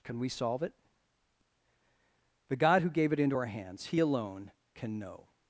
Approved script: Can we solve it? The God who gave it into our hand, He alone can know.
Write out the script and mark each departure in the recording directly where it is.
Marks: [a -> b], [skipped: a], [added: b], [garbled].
Can we solve it? The God who gave it into our [hand, -> hands] He alone can know.